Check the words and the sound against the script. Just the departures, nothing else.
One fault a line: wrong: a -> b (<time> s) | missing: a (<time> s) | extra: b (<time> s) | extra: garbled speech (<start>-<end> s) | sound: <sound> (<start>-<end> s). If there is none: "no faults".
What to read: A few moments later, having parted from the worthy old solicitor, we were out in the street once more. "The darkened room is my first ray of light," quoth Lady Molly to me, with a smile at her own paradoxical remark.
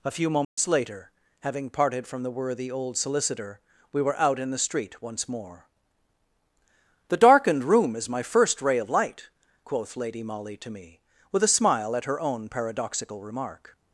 sound: dropout (0.4-0.6 s)